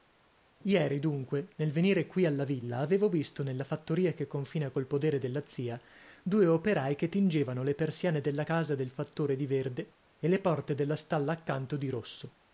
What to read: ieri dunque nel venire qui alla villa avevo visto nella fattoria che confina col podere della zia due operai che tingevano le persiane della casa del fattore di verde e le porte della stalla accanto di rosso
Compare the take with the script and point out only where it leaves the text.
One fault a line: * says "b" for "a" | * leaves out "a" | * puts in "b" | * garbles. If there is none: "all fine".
all fine